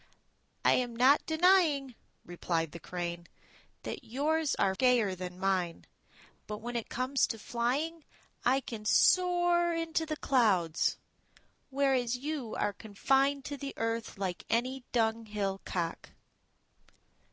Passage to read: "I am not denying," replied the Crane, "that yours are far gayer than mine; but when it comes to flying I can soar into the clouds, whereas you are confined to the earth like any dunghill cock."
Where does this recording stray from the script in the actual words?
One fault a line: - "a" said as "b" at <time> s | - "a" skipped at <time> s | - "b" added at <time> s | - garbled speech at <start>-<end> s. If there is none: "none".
- "far" skipped at 4.7 s